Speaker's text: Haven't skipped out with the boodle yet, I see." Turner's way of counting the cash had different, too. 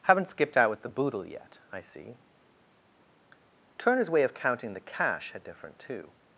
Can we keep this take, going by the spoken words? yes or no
yes